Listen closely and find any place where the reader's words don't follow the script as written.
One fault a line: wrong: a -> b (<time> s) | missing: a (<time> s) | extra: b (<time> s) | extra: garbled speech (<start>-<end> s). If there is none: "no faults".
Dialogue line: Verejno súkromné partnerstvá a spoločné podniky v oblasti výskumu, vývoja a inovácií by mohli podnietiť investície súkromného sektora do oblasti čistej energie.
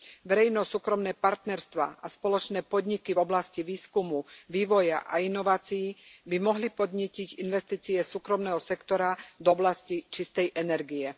no faults